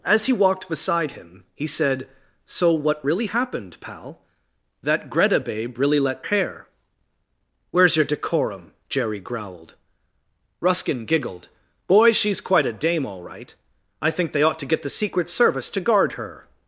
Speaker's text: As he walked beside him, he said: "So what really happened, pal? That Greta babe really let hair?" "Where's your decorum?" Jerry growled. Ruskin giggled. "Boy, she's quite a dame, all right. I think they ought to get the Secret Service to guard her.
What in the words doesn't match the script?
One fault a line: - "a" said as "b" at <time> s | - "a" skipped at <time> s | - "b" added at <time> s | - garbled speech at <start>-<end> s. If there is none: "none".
none